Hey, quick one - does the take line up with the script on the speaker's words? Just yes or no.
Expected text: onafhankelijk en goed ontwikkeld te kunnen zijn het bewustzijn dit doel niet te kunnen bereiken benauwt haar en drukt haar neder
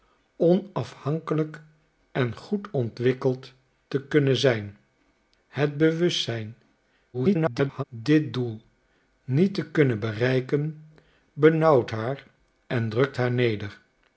no